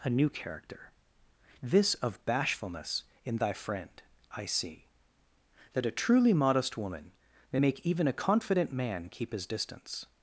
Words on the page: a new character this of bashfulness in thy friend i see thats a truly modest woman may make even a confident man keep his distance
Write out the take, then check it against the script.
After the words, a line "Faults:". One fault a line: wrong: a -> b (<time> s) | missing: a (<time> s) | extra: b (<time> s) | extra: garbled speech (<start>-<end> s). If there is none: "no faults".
a new character this of bashfulness in thy friend i see that a truly modest woman may make even a confident man keep his distance
Faults:
wrong: thats -> that (5.7 s)